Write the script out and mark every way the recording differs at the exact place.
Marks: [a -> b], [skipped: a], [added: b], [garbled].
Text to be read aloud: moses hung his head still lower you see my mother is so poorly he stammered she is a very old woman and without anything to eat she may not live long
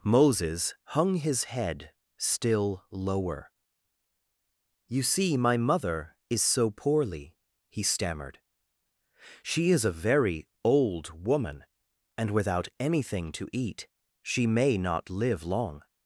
moses hung his head still lower you see my mother is so poorly he stammered she is a very old woman and without anything to eat she may not live long